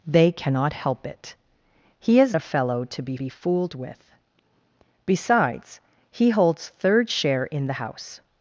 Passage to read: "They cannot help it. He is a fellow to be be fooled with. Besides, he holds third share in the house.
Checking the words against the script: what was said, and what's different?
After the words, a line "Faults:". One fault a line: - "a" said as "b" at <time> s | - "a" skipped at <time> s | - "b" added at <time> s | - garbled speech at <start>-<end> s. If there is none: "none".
"They cannot help it. He is a fellow to be be fooled with. Besides, he holds third share in the house.
Faults:
none